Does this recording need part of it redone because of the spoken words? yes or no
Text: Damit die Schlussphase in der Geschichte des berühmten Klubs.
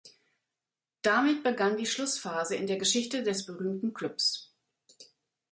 yes